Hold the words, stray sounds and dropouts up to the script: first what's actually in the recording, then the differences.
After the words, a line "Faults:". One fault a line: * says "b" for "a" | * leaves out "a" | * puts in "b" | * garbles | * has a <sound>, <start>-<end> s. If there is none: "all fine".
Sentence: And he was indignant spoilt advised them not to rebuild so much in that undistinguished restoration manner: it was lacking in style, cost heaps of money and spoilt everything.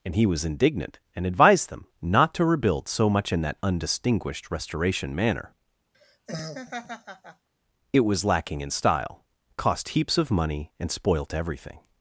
And he was indignant and advised them not to rebuild so much in that undistinguished restoration manner: it was lacking in style, cost heaps of money and spoilt everything.
Faults:
* says "and" for "spoilt"
* has a laugh, 5.9-7.5 s